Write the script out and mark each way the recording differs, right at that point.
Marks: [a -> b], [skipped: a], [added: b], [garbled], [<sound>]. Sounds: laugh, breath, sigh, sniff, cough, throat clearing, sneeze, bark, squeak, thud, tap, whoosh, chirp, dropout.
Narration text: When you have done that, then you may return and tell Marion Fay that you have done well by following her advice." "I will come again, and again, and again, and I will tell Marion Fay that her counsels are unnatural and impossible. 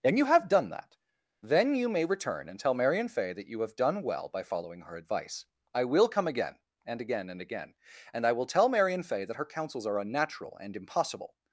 [When -> And] you have done that, then you may return and tell Marion Fay that you have done well by following her advice." "I will come again, and again, and again, and I will tell Marion Fay that her counsels are unnatural and impossible.